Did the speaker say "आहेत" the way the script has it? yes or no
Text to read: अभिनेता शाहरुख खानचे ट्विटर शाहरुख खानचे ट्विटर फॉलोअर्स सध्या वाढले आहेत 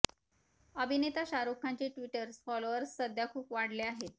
yes